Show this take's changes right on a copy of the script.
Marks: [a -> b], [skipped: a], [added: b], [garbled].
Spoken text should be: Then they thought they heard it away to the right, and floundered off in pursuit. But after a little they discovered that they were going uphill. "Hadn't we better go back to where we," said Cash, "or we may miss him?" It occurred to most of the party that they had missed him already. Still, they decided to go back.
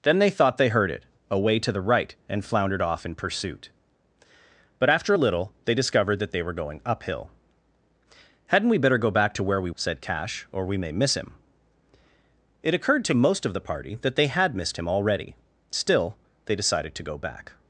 Then they thought they heard it away to the right, and floundered off in pursuit. But after a little they discovered that they were going uphill. "Hadn't we better go back to where we," said Cash, "or we may miss him?" It occurred to most of the party that they had missed him already. Still, they decided to go back.